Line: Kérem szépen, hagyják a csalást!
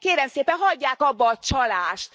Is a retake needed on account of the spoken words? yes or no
yes